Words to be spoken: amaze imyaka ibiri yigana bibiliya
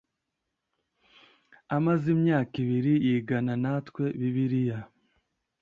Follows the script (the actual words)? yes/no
no